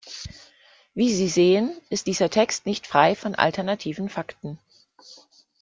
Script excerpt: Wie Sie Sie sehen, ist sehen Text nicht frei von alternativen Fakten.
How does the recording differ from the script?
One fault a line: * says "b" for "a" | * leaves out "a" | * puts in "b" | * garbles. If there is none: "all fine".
* leaves out "Sie"
* says "dieser" for "sehen"